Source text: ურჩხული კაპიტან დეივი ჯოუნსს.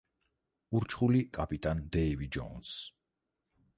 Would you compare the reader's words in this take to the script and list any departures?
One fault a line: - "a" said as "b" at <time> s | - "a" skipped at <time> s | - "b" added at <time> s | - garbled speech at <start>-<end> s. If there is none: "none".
none